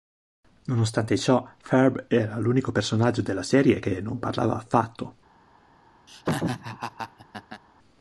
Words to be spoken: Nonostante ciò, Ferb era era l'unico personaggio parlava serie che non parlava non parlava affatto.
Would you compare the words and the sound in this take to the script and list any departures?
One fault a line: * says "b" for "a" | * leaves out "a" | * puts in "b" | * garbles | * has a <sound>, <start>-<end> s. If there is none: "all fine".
* leaves out "era"
* says "della" for "parlava"
* leaves out "non parlava"
* has a laugh, 6.1-7.6 s